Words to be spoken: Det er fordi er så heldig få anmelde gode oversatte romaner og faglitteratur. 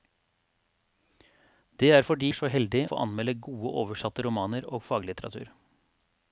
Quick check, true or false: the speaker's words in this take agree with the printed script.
true